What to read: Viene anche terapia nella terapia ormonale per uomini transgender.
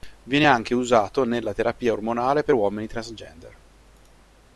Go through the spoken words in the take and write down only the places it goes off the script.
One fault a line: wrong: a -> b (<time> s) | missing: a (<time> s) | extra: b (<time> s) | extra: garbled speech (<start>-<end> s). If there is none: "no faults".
wrong: terapia -> usato (0.7 s)